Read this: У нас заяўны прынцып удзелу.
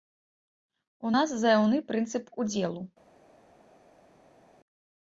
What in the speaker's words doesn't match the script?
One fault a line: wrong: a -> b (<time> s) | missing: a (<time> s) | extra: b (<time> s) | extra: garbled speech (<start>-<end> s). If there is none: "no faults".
no faults